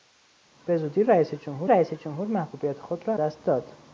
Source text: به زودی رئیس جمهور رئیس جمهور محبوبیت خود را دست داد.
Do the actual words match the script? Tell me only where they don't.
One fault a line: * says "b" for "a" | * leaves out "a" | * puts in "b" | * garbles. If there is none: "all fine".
all fine